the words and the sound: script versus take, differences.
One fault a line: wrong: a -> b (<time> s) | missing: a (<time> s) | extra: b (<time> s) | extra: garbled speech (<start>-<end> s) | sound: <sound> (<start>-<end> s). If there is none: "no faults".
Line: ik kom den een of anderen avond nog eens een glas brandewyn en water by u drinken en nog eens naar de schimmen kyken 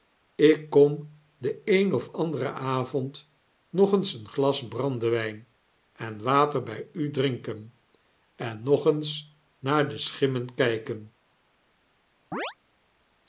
sound: chirp (12.3-12.6 s)